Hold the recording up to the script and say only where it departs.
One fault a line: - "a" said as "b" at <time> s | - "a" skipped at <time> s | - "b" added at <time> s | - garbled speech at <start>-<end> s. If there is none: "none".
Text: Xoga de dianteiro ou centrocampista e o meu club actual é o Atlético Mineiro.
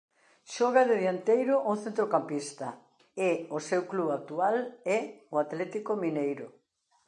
- "meu" said as "seu" at 3.7 s